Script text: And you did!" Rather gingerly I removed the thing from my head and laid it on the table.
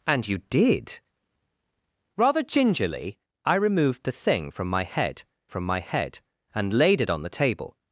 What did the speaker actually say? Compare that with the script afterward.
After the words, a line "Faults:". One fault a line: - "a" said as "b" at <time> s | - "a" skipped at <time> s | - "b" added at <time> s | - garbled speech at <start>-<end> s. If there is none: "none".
And you did!" Rather gingerly I removed the thing from my head from my head and laid it on the table.
Faults:
- "from my head" added at 5.5 s